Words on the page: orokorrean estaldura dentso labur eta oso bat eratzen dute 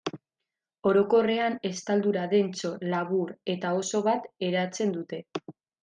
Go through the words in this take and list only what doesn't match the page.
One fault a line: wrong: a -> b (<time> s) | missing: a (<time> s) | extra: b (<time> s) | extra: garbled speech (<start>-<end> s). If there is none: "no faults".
no faults